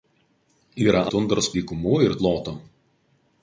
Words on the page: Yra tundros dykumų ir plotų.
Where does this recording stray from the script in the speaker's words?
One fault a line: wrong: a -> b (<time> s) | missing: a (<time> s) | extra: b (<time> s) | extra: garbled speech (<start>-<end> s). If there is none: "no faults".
no faults